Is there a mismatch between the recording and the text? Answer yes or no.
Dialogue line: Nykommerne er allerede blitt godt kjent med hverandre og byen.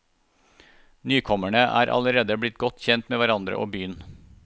no